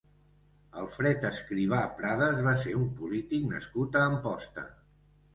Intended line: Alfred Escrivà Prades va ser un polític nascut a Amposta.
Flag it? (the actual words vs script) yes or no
no